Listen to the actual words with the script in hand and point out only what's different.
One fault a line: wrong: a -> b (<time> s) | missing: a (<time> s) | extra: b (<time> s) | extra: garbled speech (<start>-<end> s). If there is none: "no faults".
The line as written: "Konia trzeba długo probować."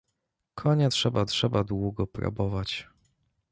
extra: trzeba (1.2 s)